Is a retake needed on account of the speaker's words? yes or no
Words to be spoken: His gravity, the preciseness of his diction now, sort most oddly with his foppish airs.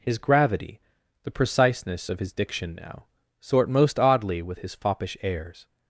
no